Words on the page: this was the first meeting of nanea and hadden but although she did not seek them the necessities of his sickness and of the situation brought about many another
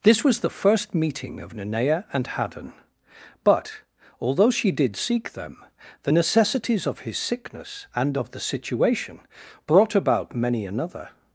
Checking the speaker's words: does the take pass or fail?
fail